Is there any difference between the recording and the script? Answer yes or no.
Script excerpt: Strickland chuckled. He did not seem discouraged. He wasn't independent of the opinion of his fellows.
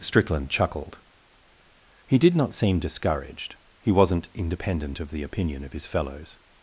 no